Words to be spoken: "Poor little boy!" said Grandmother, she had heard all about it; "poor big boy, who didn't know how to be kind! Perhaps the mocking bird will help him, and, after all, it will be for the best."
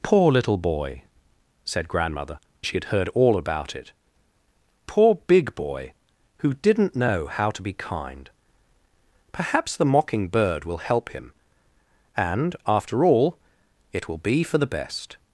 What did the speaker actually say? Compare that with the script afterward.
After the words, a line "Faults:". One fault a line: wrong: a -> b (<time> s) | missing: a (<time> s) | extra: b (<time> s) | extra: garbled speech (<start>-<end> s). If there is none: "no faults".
"Poor little boy!" said Grandmother, she had heard all about it; "poor big boy, who didn't know how to be kind! Perhaps the mocking bird will help him, and, after all, it will be for the best."
Faults:
no faults